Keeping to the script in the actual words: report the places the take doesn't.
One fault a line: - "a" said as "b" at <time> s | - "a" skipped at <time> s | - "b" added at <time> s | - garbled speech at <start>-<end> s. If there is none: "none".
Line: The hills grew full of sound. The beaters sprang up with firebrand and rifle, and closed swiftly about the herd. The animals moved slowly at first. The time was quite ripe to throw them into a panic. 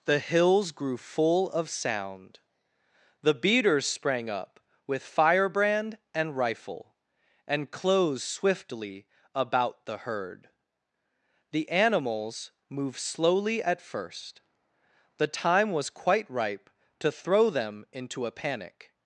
none